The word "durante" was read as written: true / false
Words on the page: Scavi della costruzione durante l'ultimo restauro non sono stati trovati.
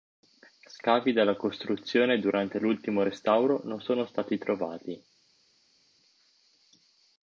true